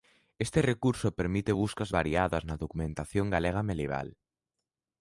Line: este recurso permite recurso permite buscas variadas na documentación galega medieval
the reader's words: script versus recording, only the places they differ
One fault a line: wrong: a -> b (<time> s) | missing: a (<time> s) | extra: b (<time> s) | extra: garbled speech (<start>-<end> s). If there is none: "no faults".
missing: recurso permite (1.5 s)